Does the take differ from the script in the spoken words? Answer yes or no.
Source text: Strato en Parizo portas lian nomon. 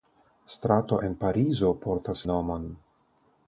yes